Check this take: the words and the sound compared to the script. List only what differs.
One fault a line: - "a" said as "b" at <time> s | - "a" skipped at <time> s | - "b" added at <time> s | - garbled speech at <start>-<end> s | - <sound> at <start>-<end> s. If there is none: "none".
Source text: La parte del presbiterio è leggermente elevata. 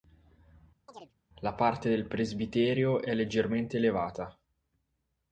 - chirp at 0.9-1.1 s